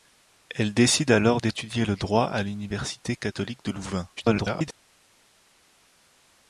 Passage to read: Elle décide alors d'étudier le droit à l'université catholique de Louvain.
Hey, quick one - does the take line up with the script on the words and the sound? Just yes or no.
no